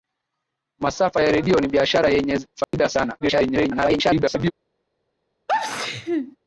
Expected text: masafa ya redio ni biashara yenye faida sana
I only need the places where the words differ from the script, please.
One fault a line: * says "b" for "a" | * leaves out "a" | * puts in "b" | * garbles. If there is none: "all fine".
* garbles